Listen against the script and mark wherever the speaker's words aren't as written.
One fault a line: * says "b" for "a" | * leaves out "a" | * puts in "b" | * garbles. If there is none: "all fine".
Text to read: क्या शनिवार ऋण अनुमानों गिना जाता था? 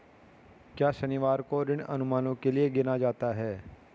* puts in "को"
* puts in "के लिए"
* says "है" for "था"